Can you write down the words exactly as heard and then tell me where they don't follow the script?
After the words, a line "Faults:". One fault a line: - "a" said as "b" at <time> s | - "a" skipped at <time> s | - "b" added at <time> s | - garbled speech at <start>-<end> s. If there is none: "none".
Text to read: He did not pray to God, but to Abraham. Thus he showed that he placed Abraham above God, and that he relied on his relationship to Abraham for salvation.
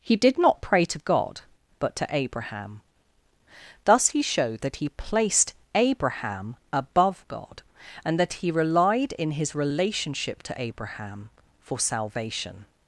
He did not pray to God, but to Abraham. Thus he showed that he placed Abraham above God, and that he relied in his relationship to Abraham for salvation.
Faults:
- "on" said as "in" at 9.1 s